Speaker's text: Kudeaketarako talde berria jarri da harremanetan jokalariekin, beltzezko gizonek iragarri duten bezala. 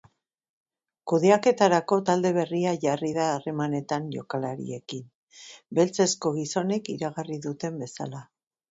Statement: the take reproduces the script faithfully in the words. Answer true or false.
true